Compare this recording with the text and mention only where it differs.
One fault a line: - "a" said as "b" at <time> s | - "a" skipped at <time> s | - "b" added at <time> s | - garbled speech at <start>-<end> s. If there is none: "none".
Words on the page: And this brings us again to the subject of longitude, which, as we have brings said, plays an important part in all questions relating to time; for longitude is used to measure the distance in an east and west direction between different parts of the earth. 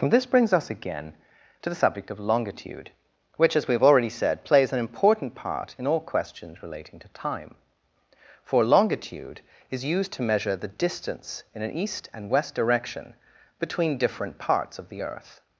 - "brings" said as "already" at 3.8 s